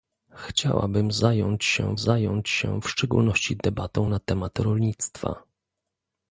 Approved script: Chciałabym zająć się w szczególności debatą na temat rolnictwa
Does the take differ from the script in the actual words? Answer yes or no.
yes